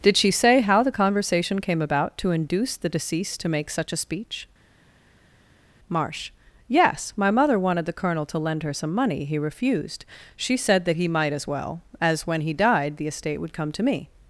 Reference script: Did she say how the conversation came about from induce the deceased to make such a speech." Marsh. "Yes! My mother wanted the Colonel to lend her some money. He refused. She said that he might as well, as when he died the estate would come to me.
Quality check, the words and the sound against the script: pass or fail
fail